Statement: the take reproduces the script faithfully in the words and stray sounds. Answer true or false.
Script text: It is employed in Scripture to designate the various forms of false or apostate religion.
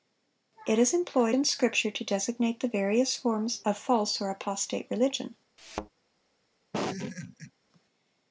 false